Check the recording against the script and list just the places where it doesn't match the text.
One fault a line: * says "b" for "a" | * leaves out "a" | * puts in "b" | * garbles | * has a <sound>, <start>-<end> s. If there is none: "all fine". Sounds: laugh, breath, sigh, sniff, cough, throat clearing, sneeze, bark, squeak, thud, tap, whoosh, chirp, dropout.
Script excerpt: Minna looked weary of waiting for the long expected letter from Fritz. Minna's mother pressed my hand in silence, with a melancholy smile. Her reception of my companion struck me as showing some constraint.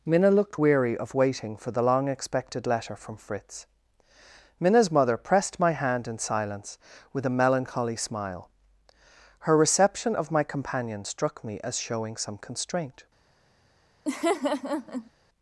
* has a laugh, 14.1-15.1 s